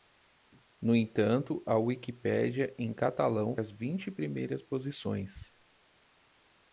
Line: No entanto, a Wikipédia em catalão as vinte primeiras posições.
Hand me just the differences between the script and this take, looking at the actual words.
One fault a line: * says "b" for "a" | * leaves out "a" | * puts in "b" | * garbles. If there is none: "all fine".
all fine